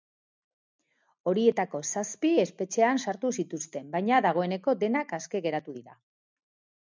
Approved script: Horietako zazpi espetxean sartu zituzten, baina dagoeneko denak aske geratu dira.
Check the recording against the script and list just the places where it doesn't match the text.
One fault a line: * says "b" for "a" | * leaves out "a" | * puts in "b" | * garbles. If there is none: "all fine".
all fine